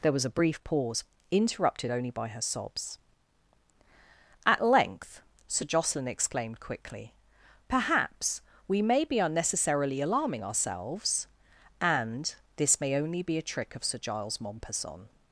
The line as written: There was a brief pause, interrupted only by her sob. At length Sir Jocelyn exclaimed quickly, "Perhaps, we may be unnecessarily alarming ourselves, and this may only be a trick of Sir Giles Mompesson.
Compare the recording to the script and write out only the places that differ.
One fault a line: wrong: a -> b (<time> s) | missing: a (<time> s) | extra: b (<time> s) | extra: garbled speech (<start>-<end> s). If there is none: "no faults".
wrong: sob -> sobs (2.4 s)